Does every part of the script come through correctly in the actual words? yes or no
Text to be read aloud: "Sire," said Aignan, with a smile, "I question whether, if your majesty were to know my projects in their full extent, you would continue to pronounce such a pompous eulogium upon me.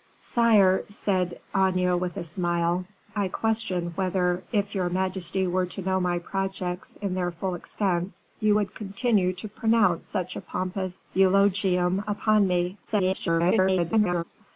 no